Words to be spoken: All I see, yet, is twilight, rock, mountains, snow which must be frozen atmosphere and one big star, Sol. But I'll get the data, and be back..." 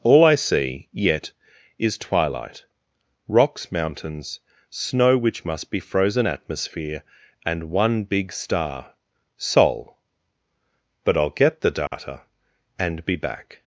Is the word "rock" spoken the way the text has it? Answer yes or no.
no